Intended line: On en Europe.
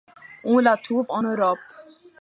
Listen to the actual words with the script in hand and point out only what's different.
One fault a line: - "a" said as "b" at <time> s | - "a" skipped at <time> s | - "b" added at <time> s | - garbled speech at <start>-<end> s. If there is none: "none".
- "la trouve" added at 0.6 s